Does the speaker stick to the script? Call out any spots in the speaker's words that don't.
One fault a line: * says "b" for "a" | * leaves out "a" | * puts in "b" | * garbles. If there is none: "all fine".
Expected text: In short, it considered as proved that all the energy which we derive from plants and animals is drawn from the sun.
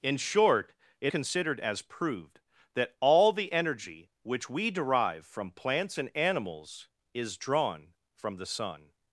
all fine